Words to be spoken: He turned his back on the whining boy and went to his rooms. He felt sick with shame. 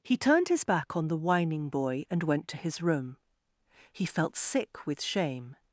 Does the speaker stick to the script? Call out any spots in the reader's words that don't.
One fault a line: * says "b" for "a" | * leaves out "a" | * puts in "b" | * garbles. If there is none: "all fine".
* says "room" for "rooms"